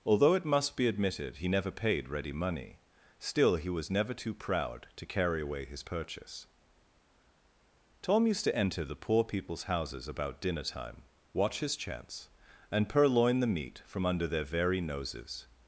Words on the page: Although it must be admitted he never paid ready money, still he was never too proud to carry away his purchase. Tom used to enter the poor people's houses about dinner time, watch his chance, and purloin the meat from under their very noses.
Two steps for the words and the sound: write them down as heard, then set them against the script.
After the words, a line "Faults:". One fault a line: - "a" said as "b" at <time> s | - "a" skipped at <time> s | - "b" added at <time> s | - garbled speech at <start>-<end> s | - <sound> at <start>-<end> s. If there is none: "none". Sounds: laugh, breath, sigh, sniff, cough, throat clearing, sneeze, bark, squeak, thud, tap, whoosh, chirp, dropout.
Although it must be admitted he never paid ready money, still he was never too proud to carry away his purchase. Tom used to enter the poor people's houses about dinner time, watch his chance, and purloin the meat from under their very noses.
Faults:
none